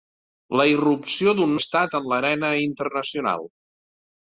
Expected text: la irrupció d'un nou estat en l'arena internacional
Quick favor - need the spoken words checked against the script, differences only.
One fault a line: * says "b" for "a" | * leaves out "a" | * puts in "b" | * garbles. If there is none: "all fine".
* leaves out "nou"